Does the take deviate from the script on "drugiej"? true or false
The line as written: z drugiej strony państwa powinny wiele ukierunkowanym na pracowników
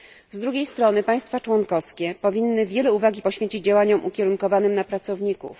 false